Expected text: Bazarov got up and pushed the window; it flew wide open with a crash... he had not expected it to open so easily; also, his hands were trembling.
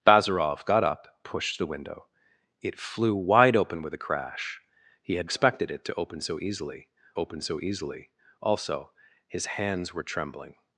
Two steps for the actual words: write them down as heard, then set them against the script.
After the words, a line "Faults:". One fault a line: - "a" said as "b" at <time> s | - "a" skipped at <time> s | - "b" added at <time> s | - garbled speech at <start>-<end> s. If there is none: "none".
Bazarov got up pushed the window; it flew wide open with a crash... he had expected it to open so easily open so easily; also, his hands were trembling.
Faults:
- "and" skipped at 1.1 s
- "not" skipped at 5.3 s
- "open so easily" added at 7.2 s